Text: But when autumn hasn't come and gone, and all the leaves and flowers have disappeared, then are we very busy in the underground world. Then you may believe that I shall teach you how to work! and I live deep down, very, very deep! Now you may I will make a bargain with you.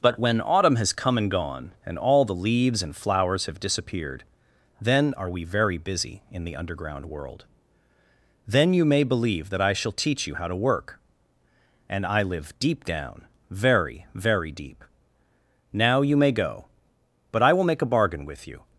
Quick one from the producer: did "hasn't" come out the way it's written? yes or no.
no